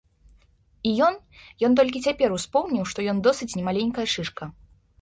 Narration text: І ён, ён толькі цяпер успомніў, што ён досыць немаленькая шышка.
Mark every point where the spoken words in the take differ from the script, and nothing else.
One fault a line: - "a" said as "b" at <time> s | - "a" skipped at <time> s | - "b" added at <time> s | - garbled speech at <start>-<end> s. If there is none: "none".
none